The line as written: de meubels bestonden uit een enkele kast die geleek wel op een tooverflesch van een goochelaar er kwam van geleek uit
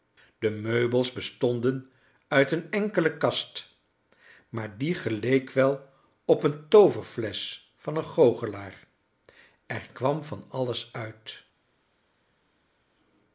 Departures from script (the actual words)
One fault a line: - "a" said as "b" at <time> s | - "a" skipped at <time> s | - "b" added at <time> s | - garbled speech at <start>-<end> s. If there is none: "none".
- "maar" added at 4.5 s
- "geleek" said as "alles" at 10.5 s